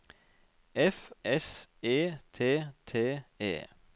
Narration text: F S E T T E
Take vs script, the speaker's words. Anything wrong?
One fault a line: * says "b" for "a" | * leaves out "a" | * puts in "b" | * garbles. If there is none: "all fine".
all fine